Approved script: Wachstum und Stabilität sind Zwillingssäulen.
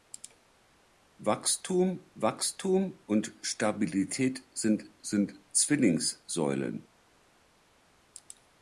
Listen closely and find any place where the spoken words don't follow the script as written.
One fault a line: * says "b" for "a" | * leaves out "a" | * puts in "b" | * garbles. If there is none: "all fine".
* puts in "wachstum"
* puts in "sind"